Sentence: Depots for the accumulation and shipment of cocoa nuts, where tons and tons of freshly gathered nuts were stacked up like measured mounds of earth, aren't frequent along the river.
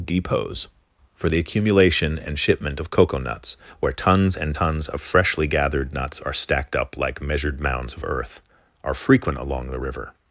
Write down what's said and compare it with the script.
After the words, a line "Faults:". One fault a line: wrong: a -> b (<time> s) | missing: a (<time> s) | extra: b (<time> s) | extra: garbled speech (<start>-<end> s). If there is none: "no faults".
Depots for the accumulation and shipment of cocoa nuts, where tons and tons of freshly gathered nuts are stacked up like measured mounds of earth, are frequent along the river.
Faults:
wrong: were -> are (6.2 s)
wrong: aren't -> are (8.8 s)